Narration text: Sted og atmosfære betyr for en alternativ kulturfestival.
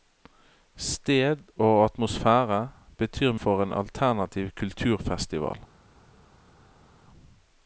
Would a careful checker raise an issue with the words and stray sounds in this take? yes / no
no